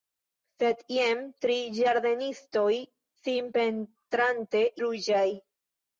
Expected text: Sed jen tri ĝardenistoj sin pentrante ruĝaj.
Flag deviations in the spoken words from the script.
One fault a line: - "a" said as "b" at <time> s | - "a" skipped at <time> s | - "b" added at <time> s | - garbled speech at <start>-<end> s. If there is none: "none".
none